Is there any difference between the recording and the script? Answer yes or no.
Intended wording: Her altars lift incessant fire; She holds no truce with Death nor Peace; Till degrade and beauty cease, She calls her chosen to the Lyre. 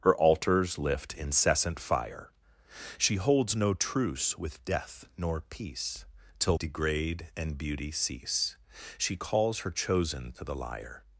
no